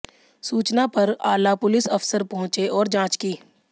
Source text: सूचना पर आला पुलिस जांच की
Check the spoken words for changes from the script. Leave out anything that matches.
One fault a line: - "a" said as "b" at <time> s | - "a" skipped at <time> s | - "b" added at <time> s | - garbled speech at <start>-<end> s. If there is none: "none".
- "अफसर पहुंचे और" added at 1.9 s